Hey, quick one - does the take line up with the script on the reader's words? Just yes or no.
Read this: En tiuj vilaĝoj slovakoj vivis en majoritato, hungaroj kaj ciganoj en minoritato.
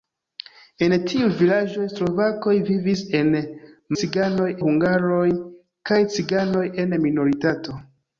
no